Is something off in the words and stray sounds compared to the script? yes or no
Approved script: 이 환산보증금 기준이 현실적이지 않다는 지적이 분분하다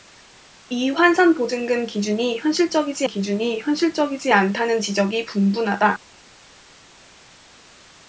yes